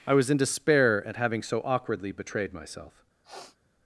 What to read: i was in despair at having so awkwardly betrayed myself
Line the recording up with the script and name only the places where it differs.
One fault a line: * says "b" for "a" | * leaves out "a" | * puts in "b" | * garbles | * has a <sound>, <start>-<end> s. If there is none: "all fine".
* has a sniff, 3.2-3.6 s